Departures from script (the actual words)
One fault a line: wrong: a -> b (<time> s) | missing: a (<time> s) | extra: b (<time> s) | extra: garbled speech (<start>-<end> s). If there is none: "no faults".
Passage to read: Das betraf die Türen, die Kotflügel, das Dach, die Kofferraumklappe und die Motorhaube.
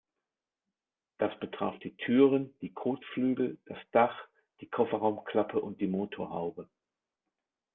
no faults